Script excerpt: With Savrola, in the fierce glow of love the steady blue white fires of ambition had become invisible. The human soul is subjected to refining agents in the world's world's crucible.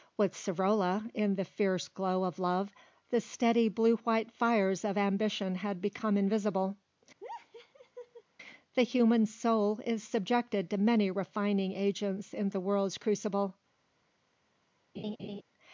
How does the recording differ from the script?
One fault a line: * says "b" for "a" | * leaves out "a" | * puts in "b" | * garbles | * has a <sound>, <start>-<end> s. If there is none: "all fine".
* has a laugh, 7.2-8.2 s
* puts in "many"
* leaves out "world's"
* has a laugh, 14.9-15.4 s